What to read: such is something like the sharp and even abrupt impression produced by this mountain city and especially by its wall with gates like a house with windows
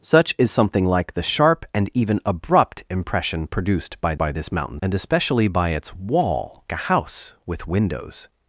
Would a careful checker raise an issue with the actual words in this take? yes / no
yes